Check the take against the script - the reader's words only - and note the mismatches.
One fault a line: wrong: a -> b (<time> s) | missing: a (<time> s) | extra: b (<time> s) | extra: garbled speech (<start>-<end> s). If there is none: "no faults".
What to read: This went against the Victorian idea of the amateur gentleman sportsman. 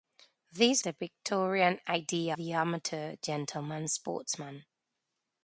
missing: went against (0.8 s)
missing: of (2.4 s)